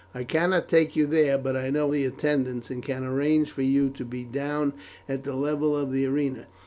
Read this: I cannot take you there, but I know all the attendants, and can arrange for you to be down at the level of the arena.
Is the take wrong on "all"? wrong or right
wrong